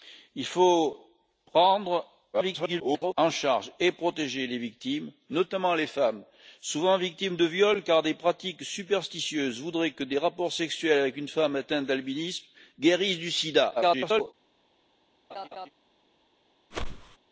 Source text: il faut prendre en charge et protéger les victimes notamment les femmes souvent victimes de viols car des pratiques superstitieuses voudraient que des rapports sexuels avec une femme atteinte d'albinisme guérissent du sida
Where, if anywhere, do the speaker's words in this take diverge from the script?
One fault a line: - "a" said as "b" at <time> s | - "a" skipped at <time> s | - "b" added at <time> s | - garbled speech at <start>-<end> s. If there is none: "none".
- garbled speech at 2.3-3.1 s
- garbled speech at 13.8-14.3 s